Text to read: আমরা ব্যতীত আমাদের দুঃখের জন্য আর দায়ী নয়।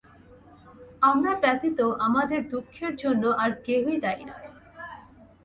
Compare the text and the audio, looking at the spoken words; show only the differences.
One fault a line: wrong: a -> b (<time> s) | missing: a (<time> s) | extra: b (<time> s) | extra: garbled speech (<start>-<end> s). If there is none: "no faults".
extra: কেহই (3.7 s)